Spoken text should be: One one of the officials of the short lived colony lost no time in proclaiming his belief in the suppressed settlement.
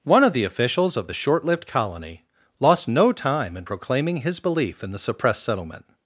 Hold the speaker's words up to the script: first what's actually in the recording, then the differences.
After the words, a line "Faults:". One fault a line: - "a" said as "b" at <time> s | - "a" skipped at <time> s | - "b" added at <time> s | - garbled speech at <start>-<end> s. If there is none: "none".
One of the officials of the short lived colony lost no time in proclaiming his belief in the suppressed settlement.
Faults:
- "one" skipped at 0.2 s